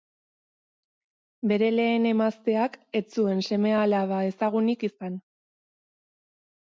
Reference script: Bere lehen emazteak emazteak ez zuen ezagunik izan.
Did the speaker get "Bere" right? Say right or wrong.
right